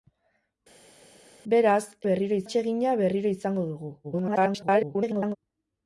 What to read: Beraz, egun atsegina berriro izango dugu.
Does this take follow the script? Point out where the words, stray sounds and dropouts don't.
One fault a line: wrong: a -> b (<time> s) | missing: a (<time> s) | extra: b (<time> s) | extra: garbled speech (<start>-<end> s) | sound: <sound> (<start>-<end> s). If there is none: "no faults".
wrong: egun -> berriro (2.1 s)
extra: garbled speech (4.0-5.4 s)